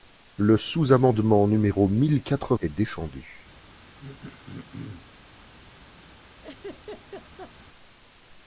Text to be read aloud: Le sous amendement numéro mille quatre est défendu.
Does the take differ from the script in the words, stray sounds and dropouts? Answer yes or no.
yes